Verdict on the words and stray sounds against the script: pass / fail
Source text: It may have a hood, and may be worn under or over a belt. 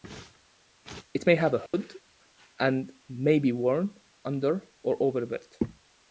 fail